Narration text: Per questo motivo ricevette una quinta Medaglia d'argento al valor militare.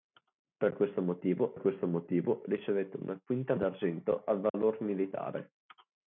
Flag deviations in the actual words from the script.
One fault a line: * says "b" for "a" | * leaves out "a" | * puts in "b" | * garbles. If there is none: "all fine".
* puts in "questo motivo"
* leaves out "Medaglia"